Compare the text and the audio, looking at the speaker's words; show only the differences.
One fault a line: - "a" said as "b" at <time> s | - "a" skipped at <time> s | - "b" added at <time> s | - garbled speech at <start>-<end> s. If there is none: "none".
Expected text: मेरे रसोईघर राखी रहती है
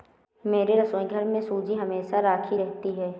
- "में सूजी हमेशा" added at 1.2 s